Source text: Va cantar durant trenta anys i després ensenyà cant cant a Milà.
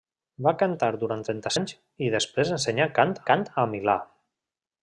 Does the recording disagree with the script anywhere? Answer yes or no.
no